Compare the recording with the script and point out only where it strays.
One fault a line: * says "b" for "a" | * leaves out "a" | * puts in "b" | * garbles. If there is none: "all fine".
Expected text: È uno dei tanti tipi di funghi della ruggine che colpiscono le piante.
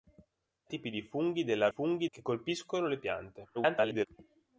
* leaves out "uno dei tanti"
* says "funghi" for "ruggine"
* garbles